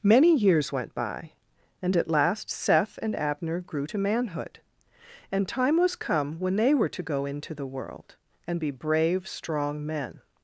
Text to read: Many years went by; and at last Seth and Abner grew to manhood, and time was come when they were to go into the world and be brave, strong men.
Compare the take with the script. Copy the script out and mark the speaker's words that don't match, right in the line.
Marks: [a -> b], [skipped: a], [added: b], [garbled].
Many years went by; and at last Seth and Abner grew to manhood, and time was come when they were to go into the world and be brave, strong men.